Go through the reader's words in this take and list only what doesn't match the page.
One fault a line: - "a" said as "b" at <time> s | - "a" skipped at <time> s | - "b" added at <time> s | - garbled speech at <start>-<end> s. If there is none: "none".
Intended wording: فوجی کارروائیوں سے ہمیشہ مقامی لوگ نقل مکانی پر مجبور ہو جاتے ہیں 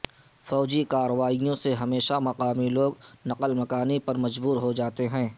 none